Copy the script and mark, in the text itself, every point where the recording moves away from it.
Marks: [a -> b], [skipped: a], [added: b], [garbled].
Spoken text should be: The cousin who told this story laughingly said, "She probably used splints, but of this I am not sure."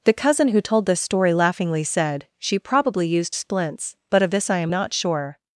The cousin who told this story laughingly said, "She probably used splints, but of this I am not sure."